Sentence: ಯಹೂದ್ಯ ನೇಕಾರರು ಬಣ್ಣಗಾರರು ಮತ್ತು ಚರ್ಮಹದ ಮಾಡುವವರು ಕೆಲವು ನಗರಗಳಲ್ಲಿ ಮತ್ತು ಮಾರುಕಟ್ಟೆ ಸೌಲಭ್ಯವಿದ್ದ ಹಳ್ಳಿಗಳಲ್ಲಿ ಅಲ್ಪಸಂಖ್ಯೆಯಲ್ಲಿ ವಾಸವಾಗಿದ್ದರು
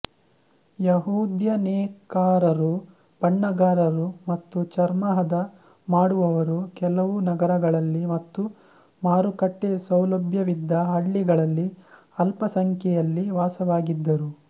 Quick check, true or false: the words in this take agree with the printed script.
true